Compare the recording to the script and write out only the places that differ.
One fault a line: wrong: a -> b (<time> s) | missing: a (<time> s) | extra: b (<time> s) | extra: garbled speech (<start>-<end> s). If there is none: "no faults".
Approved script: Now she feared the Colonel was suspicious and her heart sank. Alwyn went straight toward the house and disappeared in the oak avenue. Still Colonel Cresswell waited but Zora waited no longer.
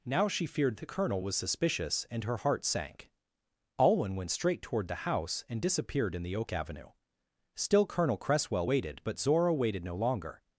no faults